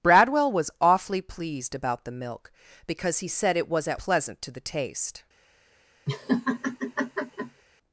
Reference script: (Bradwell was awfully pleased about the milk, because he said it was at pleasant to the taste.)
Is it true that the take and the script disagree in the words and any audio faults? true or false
true